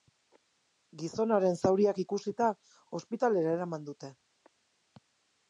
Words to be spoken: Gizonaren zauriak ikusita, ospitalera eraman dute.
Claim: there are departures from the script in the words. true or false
false